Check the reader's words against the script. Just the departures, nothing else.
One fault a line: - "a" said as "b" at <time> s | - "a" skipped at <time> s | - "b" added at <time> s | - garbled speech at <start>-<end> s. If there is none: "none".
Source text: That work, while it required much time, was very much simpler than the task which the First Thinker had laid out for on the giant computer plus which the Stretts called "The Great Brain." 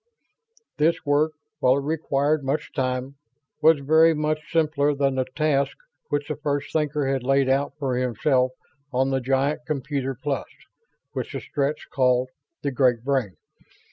- "That" said as "This" at 0.8 s
- "himself" added at 8.0 s